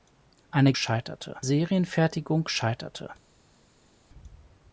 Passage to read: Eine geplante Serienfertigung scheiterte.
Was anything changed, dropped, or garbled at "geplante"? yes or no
yes